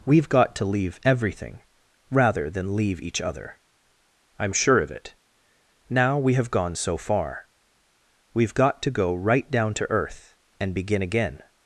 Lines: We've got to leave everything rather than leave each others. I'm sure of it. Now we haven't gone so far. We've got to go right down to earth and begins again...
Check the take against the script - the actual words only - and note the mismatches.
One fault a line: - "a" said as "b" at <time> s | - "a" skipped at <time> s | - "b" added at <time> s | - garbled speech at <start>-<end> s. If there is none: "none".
- "others" said as "other" at 3.2 s
- "haven't" said as "have" at 6.3 s
- "begins" said as "begin" at 10.7 s